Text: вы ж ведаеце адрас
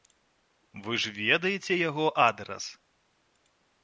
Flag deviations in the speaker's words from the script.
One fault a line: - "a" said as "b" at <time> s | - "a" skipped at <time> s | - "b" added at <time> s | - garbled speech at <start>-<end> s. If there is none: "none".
- "яго" added at 1.9 s